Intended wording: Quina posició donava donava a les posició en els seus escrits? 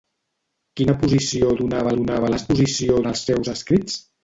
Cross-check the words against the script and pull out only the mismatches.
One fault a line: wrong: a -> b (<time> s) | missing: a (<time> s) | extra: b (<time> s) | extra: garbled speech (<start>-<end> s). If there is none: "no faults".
no faults